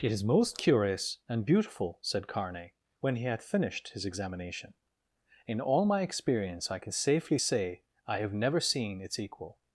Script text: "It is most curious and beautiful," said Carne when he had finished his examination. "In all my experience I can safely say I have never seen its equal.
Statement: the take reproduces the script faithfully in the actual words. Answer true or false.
true